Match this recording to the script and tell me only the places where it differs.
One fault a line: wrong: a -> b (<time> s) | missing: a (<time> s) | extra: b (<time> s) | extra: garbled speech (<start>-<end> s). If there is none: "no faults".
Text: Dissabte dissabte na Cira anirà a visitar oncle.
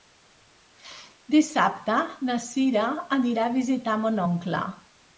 missing: dissabte (2.0 s)
extra: mon (4.1 s)